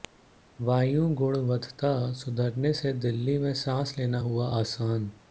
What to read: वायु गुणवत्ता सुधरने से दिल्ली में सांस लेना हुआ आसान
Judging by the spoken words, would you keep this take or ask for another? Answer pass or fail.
pass